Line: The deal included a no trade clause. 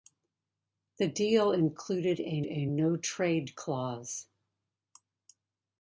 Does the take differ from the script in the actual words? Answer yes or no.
yes